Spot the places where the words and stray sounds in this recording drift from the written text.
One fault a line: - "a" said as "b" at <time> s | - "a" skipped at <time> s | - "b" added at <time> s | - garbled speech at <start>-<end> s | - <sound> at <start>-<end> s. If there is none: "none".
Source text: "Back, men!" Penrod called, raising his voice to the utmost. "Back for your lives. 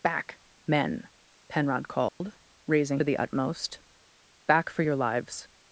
- dropout at 2.1-2.2 s
- "his voice to" skipped at 3.0 s